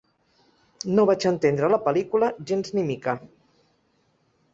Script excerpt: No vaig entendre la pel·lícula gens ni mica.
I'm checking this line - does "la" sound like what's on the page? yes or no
yes